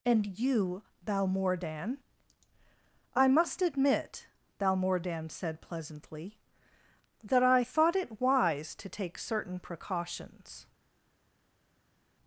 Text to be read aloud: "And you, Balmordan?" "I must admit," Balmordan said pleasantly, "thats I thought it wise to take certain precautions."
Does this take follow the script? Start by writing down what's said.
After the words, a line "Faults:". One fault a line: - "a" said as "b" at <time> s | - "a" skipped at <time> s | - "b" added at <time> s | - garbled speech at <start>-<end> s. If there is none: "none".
"And you, Balmordan?" "I must admit," Balmordan said pleasantly, "that I thought it wise to take certain precautions."
Faults:
- "thats" said as "that" at 7.2 s